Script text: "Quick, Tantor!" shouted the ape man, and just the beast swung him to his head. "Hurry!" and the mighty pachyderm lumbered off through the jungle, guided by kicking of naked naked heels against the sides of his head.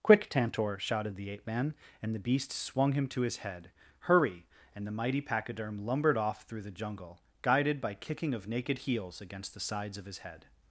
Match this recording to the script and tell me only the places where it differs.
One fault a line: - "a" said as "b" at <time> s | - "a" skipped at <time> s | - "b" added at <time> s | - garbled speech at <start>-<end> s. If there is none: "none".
- "just" skipped at 2.1 s
- "naked" skipped at 8.8 s